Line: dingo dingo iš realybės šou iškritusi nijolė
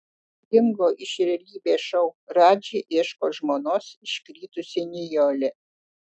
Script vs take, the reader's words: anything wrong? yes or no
yes